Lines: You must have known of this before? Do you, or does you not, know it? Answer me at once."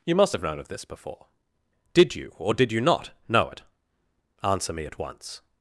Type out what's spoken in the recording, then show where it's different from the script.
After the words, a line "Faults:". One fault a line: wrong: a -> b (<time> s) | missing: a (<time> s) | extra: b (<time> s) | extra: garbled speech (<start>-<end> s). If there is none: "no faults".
You must have known of this before? Did you, or did you not, know it? Answer me at once."
Faults:
wrong: Do -> Did (1.9 s)
wrong: does -> did (2.5 s)